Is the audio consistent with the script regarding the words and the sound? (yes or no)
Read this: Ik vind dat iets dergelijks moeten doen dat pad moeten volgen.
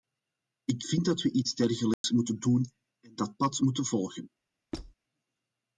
no